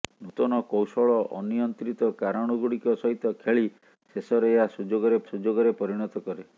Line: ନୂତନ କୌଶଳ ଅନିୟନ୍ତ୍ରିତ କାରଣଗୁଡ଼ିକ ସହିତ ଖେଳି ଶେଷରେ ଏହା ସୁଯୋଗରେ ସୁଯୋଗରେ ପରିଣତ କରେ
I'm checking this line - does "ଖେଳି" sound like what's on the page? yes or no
yes